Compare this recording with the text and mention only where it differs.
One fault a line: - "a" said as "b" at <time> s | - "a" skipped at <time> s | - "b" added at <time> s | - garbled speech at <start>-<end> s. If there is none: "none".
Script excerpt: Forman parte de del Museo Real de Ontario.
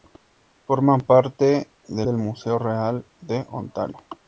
none